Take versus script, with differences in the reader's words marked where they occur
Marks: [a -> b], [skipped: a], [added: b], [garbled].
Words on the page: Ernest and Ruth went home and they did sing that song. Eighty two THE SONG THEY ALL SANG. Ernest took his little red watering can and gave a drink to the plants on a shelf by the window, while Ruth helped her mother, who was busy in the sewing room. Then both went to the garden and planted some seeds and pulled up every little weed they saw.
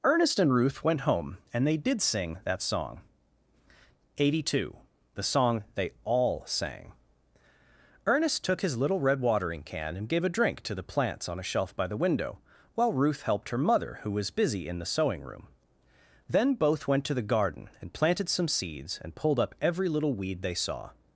Ernest and Ruth went home and they did sing that song. Eighty two THE SONG THEY ALL SANG. Ernest took his little red watering can and gave a drink to the plants on a shelf by the window, while Ruth helped her mother, who was busy in the sewing room. Then both went to the garden and planted some seeds and pulled up every little weed they saw.